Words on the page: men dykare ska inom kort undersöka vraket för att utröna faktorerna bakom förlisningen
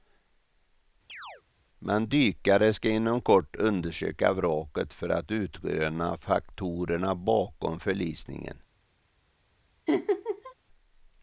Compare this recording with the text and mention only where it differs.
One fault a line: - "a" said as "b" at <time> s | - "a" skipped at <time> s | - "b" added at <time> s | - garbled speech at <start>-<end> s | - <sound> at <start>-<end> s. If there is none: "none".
- chirp at 1.1-1.4 s
- laugh at 9.9-10.5 s